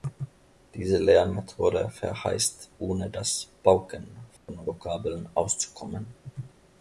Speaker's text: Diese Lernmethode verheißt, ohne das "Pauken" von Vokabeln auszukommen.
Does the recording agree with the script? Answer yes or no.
yes